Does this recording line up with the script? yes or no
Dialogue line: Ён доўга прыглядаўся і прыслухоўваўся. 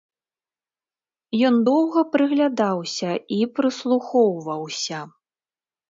yes